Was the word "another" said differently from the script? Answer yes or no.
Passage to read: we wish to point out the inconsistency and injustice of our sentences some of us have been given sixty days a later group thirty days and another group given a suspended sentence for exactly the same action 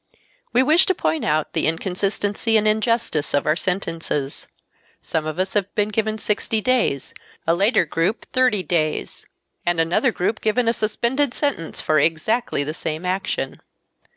no